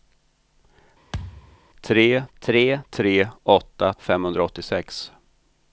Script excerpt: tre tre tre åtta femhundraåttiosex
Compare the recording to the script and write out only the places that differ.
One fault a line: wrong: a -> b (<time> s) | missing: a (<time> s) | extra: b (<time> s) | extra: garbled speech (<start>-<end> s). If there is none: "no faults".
no faults